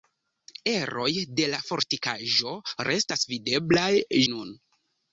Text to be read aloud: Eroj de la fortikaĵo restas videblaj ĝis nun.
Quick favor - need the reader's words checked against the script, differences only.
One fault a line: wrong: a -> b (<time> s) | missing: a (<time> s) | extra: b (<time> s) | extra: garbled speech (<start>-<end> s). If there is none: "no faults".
missing: ĝis (3.9 s)